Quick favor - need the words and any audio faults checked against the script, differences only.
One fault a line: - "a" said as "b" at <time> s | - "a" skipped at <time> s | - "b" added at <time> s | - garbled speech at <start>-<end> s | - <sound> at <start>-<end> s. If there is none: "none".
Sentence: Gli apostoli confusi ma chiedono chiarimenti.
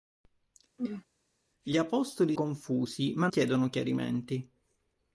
- throat clearing at 0.8-1.0 s